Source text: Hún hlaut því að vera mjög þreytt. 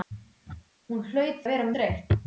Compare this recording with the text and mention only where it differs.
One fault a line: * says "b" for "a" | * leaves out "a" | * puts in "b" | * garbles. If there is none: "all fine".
* leaves out "því"
* leaves out "mjög"